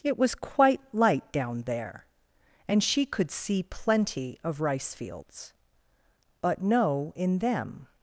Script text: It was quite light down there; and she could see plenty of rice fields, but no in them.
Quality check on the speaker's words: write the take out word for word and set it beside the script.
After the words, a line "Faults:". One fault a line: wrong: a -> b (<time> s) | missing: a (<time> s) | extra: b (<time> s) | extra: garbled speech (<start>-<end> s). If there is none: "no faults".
It was quite light down there; and she could see plenty of rice fields, but no in them.
Faults:
no faults